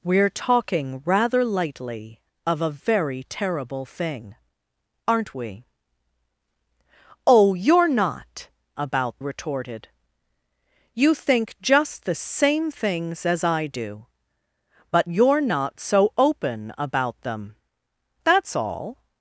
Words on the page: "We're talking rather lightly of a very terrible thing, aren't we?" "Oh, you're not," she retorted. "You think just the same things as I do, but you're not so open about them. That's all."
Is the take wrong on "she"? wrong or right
wrong